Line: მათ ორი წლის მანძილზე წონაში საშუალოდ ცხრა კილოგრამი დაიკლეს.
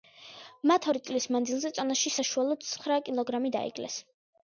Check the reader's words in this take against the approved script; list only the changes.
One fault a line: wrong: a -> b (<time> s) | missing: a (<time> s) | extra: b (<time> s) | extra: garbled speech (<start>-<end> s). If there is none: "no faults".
no faults